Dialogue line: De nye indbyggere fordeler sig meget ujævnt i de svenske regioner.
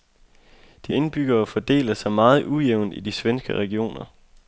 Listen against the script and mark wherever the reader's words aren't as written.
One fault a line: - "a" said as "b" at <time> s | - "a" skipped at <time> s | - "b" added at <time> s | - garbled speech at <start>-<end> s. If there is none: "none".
- "nye" skipped at 0.9 s